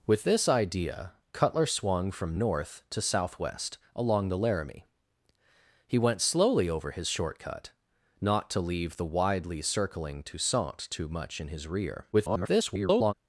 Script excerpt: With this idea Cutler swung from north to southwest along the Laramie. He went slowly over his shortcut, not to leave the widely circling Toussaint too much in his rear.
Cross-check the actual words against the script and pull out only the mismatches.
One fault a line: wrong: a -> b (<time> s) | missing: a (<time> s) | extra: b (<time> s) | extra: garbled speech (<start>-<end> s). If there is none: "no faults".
extra: garbled speech (12.1-13.1 s)